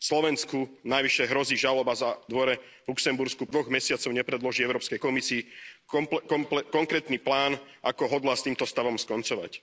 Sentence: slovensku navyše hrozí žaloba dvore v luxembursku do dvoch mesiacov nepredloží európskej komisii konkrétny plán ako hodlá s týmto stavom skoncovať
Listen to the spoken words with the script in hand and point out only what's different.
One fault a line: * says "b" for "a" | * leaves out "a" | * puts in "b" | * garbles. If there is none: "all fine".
all fine